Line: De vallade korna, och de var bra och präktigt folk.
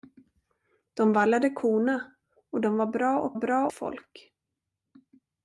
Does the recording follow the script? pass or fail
fail